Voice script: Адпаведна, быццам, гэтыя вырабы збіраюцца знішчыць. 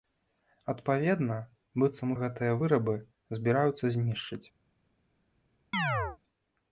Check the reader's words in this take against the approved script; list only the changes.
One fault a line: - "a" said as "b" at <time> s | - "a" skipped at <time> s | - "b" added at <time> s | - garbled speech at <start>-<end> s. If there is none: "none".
none